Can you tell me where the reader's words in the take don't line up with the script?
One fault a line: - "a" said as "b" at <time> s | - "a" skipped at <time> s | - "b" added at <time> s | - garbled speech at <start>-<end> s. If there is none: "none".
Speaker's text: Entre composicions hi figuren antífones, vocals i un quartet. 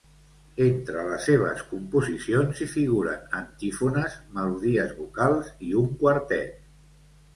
- "les seves" added at 1.1 s
- "melodies" added at 4.4 s